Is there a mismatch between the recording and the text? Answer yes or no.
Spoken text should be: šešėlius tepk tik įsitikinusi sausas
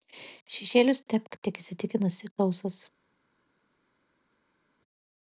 no